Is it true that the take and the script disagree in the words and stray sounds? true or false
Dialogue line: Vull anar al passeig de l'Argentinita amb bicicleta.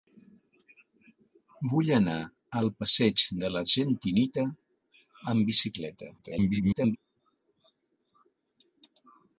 true